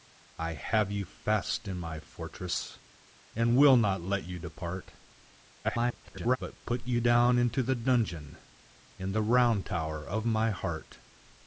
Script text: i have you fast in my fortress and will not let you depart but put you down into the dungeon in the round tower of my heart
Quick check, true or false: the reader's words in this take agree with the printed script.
false